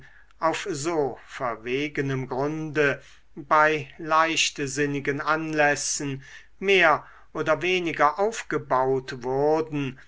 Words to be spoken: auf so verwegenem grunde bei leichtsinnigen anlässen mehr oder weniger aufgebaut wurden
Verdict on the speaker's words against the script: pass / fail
pass